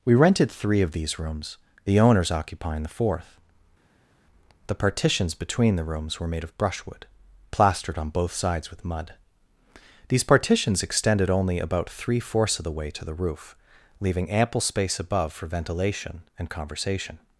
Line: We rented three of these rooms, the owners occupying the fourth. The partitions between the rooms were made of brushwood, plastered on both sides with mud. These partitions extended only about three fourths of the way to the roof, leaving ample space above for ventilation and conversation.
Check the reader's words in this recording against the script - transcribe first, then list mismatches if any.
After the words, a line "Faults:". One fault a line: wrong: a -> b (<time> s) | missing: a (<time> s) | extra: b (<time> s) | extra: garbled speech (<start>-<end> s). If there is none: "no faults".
We rented three of these rooms, the owners occupying the fourth. The partitions between the rooms were made of brushwood, plastered on both sides with mud. These partitions extended only about three fourths of the way to the roof, leaving ample space above for ventilation and conversation.
Faults:
no faults